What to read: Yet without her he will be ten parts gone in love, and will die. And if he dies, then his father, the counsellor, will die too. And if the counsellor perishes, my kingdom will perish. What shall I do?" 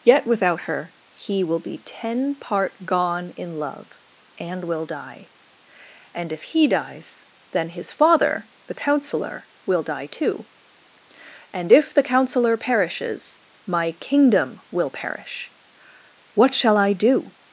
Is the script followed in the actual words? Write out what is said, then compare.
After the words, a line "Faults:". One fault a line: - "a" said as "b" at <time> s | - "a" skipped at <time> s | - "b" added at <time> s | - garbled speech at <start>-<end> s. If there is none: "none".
Yet without her he will be ten part gone in love, and will die. And if he dies, then his father, the counsellor, will die too. And if the counsellor perishes, my kingdom will perish. What shall I do?"
Faults:
- "parts" said as "part" at 2.3 s